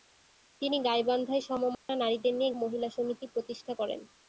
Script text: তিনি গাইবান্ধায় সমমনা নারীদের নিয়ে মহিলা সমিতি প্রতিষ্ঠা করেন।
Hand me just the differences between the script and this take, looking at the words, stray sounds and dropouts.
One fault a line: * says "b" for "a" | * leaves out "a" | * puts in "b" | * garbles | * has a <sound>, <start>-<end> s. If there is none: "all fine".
* has a dropout, 1.7-1.9 s